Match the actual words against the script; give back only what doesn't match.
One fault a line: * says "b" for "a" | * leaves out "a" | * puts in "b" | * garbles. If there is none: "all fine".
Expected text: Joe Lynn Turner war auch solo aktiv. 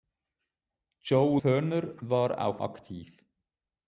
* leaves out "Lynn"
* leaves out "solo"